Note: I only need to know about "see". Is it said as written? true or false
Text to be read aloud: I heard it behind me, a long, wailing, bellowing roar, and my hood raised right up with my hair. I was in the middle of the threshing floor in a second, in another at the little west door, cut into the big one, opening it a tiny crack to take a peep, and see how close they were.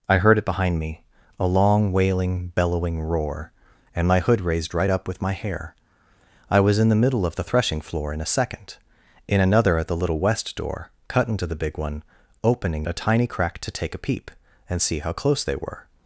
true